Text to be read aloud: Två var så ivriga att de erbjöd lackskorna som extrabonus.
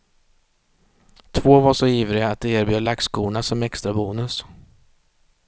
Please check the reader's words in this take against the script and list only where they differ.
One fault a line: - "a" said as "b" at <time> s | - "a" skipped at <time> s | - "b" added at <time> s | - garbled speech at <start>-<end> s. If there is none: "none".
none